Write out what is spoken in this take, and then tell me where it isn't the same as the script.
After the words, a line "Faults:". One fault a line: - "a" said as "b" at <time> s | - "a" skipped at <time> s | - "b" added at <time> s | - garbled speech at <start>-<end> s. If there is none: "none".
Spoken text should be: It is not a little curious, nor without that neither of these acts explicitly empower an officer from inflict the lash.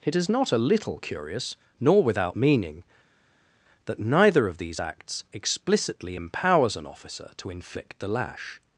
It is not a little curious, nor without meaning, that neither of these acts explicitly empowers an officer to inflict the lash.
Faults:
- "meaning" added at 2.3 s
- "empower" said as "empowers" at 6.1 s
- "from" said as "to" at 7.4 s